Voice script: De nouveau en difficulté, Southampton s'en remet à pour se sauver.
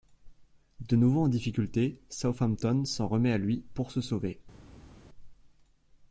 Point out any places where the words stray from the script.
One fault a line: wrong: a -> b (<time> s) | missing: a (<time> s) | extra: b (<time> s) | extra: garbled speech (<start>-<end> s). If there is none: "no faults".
extra: lui (3.4 s)